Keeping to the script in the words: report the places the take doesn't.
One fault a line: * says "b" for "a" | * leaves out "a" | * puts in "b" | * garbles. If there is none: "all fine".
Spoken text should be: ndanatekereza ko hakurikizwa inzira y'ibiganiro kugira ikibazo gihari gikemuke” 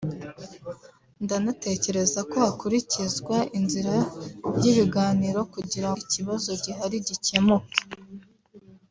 all fine